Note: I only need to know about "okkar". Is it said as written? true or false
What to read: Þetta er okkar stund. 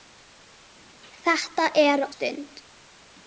false